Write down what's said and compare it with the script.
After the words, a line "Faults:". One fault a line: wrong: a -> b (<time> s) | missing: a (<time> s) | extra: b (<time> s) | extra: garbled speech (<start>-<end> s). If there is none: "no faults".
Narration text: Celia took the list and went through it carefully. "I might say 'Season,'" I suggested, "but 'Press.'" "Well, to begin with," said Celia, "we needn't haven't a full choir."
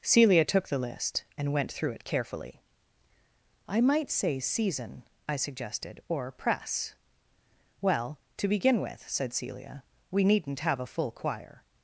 Celia took the list and went through it carefully. "I might say 'Season,'" I suggested, "or 'Press.'" "Well, to begin with," said Celia, "we needn't have a full choir."
Faults:
wrong: but -> or (6.1 s)
wrong: haven't -> have (10.6 s)